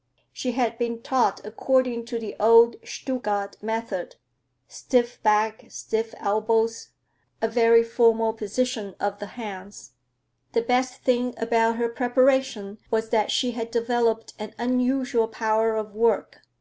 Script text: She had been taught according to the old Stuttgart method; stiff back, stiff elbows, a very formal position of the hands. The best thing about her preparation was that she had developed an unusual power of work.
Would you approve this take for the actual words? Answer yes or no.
yes